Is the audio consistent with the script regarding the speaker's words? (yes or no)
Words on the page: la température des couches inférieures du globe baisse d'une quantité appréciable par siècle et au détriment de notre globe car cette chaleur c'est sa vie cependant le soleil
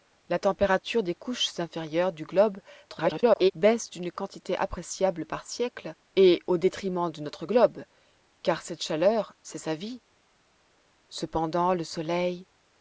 no